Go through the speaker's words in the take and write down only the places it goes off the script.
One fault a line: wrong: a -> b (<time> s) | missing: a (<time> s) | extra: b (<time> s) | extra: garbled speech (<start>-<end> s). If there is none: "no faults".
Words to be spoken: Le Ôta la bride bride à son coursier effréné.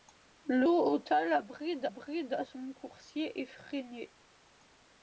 no faults